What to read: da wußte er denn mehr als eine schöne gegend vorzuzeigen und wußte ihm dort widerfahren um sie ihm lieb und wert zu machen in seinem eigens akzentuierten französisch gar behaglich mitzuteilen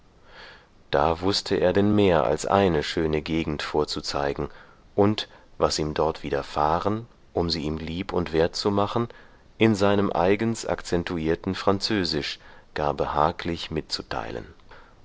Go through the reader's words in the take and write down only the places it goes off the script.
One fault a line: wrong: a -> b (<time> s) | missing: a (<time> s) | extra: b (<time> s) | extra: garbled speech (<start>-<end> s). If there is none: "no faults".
wrong: wußte -> was (5.6 s)